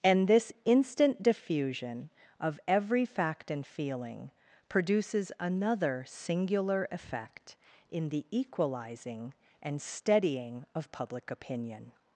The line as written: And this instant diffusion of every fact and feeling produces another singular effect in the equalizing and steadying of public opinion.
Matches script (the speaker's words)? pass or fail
pass